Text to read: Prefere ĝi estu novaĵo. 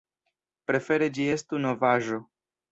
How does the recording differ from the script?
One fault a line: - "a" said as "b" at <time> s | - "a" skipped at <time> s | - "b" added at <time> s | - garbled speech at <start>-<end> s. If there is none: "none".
none